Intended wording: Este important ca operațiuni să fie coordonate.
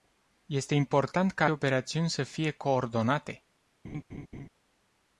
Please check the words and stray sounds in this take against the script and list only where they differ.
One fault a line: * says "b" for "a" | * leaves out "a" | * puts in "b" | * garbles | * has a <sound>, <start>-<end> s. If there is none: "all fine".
* has a laugh, 3.8-4.5 s